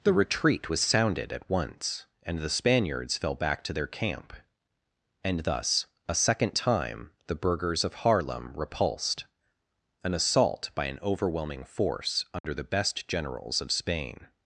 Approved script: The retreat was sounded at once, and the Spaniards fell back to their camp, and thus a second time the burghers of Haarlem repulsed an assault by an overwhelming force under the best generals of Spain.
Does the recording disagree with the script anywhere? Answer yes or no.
no